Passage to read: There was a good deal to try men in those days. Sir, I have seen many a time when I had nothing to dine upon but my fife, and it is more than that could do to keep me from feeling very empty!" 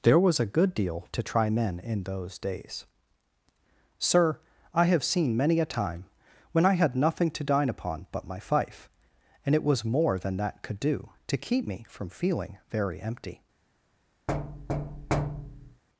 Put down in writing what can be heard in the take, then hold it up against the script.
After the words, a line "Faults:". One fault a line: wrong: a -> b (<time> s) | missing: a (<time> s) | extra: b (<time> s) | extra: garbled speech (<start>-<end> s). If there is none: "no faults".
There was a good deal to try men in those days. Sir, I have seen many a time when I had nothing to dine upon but my fife, and it was more than that could do to keep me from feeling very empty!"
Faults:
wrong: is -> was (9.6 s)